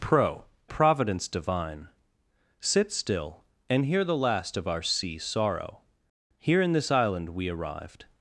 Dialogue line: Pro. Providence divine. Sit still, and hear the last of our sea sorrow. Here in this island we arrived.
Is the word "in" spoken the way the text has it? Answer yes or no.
yes